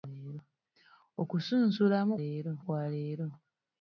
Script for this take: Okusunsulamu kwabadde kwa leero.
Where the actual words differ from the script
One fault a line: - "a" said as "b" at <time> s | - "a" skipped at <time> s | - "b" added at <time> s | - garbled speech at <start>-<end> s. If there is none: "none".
- "kwabadde" said as "leero" at 2.2 s